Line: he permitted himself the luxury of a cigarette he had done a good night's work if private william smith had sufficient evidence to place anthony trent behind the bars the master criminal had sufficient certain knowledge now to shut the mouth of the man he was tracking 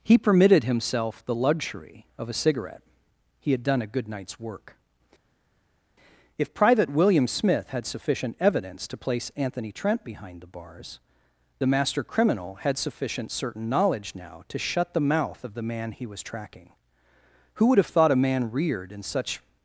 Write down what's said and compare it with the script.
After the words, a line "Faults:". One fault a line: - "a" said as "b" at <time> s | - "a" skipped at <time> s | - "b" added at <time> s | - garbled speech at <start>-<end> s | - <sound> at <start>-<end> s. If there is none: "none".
he permitted himself the luxury of a cigarette he had done a good night's work if private william smith had sufficient evidence to place anthony trent behind the bars the master criminal had sufficient certain knowledge now to shut the mouth of the man he was tracking who would have thought a man reared in such
Faults:
- "who would have thought a man reared in such" added at 17.5 s